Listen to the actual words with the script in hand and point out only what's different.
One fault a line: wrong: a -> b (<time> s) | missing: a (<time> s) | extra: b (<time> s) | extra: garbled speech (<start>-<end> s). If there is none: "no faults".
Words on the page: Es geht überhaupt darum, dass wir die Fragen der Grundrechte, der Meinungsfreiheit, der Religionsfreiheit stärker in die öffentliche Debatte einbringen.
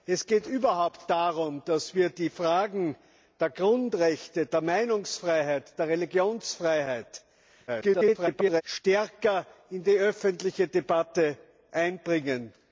extra: garbled speech (7.7-8.6 s)